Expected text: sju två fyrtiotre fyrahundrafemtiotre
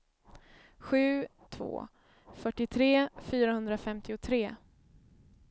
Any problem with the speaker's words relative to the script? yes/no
no